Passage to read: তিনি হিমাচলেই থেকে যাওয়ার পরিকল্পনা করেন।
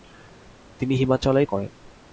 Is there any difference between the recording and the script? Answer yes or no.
yes